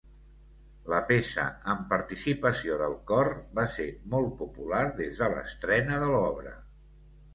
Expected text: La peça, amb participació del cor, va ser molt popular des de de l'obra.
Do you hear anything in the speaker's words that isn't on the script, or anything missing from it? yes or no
yes